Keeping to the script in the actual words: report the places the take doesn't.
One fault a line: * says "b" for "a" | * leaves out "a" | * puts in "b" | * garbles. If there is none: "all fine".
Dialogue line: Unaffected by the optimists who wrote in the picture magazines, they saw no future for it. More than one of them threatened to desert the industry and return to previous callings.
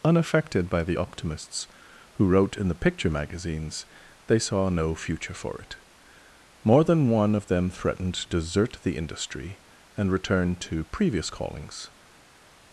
all fine